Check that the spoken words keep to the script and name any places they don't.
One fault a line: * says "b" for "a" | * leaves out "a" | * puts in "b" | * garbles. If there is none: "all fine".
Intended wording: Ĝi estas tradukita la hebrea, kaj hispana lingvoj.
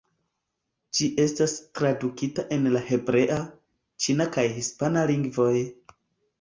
* puts in "en"
* puts in "ĉina"